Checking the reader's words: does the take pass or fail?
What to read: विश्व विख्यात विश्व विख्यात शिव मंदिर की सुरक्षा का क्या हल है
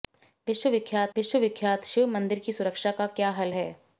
pass